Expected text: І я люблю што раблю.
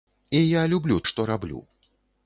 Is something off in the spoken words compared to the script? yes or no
no